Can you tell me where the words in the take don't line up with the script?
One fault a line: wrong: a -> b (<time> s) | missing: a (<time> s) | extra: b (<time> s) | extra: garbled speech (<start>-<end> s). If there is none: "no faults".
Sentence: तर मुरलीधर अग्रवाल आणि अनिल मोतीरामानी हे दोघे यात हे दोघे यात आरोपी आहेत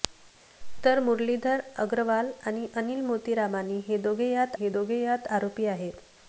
no faults